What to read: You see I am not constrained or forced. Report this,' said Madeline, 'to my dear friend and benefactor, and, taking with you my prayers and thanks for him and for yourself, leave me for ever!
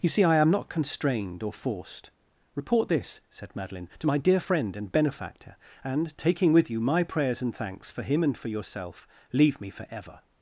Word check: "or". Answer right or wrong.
right